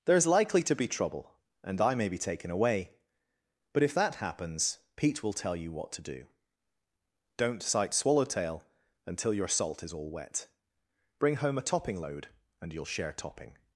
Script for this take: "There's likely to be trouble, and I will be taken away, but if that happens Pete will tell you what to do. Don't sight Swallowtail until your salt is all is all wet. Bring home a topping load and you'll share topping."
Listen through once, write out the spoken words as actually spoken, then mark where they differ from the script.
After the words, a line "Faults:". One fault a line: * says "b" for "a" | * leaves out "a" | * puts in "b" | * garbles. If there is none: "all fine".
"There's likely to be trouble, and I may be taken away, but if that happens Pete will tell you what to do. Don't sight Swallowtail until your salt is all wet. Bring home a topping load and you'll share topping."
Faults:
* says "may" for "will"
* leaves out "is all"